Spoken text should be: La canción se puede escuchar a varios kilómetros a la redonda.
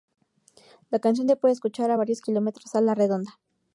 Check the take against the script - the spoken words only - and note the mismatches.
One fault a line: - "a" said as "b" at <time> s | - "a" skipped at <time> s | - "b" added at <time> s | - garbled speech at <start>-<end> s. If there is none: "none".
none